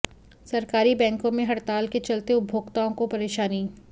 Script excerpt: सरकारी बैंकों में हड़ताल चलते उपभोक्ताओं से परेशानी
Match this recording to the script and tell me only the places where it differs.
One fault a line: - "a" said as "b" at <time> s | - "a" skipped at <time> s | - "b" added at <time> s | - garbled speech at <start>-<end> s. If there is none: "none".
- "के" added at 1.9 s
- "से" said as "को" at 2.9 s